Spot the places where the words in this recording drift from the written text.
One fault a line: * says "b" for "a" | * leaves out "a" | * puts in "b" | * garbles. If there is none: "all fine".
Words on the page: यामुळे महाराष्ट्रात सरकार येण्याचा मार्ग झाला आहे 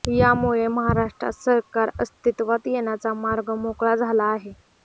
* puts in "अस्तित्वात"
* puts in "मोकळा"